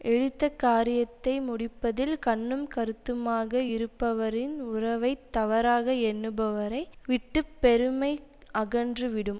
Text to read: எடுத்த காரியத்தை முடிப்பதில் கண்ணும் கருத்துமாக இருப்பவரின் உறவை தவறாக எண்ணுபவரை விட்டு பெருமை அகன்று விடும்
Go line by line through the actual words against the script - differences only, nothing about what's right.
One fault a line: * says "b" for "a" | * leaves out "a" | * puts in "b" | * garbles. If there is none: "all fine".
all fine